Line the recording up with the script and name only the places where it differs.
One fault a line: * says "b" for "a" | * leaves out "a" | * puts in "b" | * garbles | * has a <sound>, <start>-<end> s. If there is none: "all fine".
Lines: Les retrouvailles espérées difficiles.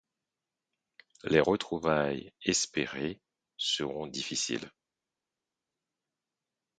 * puts in "seront"